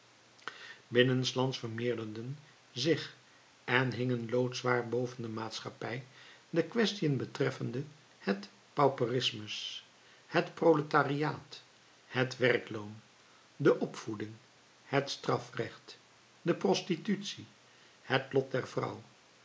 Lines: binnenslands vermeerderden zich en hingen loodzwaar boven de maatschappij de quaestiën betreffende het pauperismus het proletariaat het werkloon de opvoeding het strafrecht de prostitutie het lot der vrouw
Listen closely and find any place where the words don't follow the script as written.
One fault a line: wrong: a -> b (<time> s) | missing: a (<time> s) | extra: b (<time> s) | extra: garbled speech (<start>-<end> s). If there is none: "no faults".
no faults